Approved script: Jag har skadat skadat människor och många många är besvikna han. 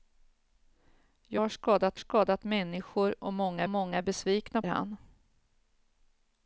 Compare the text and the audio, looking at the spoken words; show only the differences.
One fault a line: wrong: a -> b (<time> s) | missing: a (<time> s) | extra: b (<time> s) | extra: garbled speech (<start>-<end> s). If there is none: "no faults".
no faults